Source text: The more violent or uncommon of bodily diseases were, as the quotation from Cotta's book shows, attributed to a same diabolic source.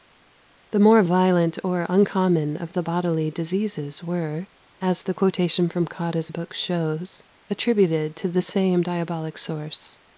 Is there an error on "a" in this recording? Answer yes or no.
yes